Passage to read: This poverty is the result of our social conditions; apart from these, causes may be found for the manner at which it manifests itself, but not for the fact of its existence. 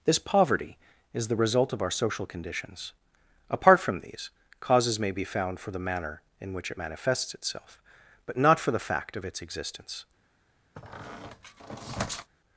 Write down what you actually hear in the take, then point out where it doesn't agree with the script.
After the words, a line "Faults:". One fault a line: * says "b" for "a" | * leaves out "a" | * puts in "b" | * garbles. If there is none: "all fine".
This poverty is the result of our social conditions; apart from these, causes may be found for the manner in which it manifests itself, but not for the fact of its existence.
Faults:
* says "in" for "at"